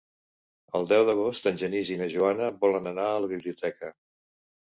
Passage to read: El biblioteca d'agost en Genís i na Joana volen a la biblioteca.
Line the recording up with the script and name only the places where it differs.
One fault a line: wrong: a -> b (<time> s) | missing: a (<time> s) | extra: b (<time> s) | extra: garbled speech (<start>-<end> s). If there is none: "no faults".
wrong: biblioteca -> deu (0.9 s)
extra: anar (2.9 s)